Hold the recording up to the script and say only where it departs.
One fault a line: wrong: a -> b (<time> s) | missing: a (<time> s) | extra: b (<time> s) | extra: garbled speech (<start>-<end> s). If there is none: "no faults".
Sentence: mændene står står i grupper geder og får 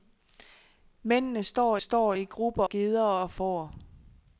no faults